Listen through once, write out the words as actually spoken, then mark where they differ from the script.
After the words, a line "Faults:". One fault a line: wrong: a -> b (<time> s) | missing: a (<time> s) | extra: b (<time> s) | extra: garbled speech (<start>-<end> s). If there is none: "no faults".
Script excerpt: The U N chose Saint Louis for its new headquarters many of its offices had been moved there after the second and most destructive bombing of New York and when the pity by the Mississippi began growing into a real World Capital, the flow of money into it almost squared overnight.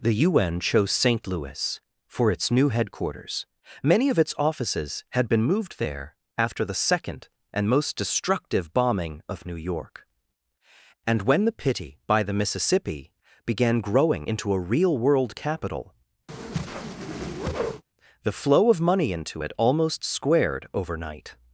The U N chose Saint Louis for its new headquarters many of its offices had been moved there after the second and most destructive bombing of New York and when the pity by the Mississippi began growing into a real World Capital, the flow of money into it almost squared overnight.
Faults:
no faults